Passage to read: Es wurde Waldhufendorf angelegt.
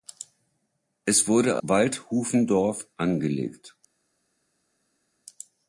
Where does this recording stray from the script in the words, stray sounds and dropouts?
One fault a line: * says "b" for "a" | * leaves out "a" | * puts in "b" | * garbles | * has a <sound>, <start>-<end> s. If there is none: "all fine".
all fine